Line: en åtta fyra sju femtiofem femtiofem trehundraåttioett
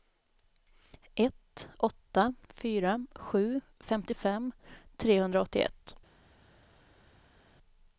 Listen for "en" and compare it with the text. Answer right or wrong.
wrong